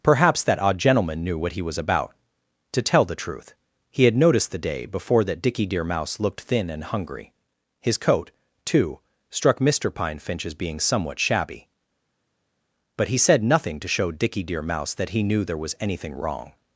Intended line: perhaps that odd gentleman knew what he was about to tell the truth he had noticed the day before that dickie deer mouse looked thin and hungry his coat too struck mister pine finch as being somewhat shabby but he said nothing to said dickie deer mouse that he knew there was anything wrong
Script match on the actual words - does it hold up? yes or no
no